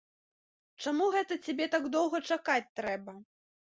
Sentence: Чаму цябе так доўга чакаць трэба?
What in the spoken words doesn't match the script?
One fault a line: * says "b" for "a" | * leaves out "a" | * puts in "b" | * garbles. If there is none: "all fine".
* puts in "гэта"